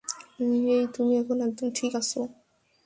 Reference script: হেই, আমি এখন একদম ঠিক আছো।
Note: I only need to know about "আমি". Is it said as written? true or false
false